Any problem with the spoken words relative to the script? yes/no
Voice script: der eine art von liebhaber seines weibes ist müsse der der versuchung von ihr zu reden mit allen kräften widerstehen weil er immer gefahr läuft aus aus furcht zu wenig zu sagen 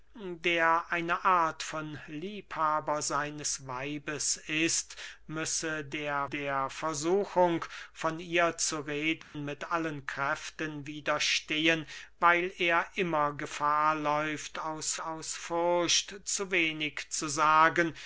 no